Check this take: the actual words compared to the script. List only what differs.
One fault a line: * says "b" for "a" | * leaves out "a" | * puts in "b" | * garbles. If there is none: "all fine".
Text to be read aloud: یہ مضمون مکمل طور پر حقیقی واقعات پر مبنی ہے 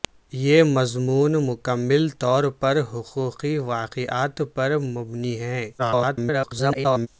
* garbles